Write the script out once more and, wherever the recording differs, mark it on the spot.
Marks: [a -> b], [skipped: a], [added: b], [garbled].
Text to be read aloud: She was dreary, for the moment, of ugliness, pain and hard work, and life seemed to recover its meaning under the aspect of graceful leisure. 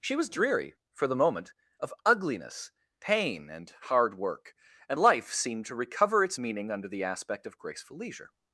She was dreary, for the moment, of ugliness, pain and hard work, and life seemed to recover its meaning under the aspect of graceful leisure.